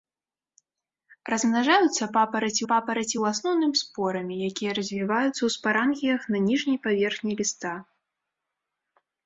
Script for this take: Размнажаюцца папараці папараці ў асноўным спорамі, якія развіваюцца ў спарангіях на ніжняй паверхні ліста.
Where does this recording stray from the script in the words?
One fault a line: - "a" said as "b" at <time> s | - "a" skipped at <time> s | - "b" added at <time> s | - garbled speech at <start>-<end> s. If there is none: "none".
none